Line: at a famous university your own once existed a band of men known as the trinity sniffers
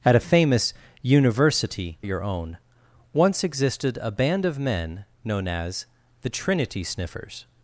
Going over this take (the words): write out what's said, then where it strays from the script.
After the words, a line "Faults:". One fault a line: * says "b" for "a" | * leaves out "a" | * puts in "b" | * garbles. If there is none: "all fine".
at a famous university your own once existed a band of men known as the trinity sniffers
Faults:
all fine